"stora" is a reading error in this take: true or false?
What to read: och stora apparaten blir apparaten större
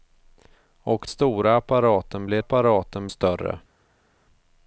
false